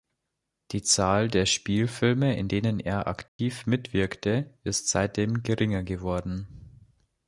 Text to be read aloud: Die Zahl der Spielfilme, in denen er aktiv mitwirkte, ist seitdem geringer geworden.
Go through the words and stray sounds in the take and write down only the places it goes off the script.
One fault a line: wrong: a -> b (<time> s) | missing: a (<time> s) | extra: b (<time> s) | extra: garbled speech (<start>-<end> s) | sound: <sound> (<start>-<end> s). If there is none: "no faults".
sound: dropout (3.3-3.4 s)